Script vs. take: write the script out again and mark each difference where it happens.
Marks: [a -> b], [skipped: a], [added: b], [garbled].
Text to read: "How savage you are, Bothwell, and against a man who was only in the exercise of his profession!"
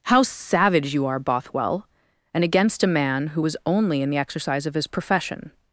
"How savage you are, Bothwell, and against a man who was only in the exercise of his profession!"